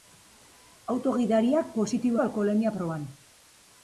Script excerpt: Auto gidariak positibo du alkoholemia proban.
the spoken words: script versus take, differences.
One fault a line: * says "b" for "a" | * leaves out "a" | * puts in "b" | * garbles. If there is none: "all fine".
all fine